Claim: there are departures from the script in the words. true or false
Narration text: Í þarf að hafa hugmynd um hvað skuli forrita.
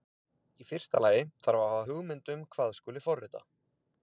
true